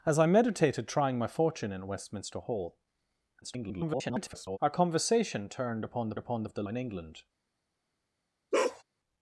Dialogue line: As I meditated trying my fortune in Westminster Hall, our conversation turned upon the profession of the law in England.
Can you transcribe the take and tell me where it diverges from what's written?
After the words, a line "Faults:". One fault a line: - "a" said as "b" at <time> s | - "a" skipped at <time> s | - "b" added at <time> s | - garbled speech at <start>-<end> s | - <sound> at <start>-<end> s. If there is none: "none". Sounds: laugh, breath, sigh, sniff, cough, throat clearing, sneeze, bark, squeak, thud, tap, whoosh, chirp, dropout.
As I meditated trying my fortune in Westminster Hall, [garbled] our conversation turned upon the upon of the in England.
Faults:
- garbled speech at 3.4-4.6 s
- "profession" said as "upon" at 6.2 s
- "law" skipped at 6.6 s
- bark at 8.5-8.8 s